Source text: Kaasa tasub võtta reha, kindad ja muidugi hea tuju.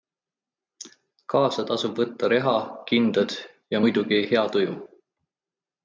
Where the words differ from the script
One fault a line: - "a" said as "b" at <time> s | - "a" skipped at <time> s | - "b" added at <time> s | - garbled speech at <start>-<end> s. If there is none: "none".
none